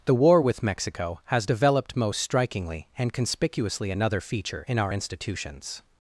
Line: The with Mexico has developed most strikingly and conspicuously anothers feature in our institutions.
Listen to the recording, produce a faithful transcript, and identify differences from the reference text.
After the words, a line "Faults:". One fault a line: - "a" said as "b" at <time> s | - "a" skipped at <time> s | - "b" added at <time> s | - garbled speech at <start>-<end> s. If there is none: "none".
The war with Mexico has developed most strikingly and conspicuously another feature in our institutions.
Faults:
- "war" added at 0.1 s
- "anothers" said as "another" at 3.9 s